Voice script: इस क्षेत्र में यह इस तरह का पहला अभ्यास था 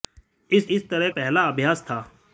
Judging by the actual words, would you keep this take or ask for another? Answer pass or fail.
fail